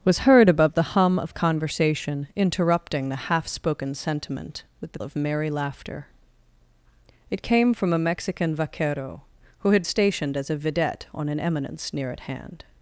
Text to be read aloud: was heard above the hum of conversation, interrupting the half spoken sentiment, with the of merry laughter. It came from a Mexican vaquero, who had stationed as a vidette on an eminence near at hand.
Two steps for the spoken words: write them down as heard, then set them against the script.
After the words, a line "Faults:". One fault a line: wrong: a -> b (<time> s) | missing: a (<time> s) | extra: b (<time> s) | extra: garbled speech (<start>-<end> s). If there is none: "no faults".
was heard above the hum of conversation, interrupting the half spoken sentiment, with the of merry laughter. It came from a Mexican vaquero, who had stationed as a vidette on an eminence near at hand.
Faults:
no faults